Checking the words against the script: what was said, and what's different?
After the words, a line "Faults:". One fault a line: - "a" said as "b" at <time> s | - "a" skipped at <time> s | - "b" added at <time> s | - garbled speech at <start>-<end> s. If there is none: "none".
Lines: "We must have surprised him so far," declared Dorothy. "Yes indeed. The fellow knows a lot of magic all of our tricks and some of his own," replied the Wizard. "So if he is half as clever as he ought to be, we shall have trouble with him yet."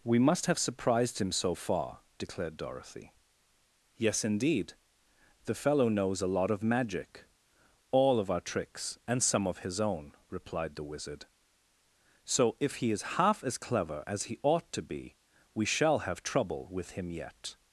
"We must have surprised him so far," declared Dorothy. "Yes indeed. The fellow knows a lot of magic all of our tricks and some of his own," replied the Wizard. "So if he is half as clever as he ought to be, we shall have trouble with him yet."
Faults:
none